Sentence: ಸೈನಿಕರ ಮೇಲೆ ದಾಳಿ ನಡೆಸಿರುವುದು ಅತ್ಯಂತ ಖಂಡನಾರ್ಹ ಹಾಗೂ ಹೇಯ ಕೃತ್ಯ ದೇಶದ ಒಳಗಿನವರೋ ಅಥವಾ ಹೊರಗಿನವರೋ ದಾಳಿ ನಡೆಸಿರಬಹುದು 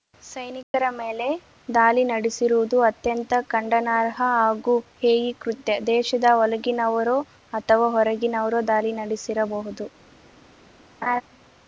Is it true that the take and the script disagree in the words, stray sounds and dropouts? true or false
true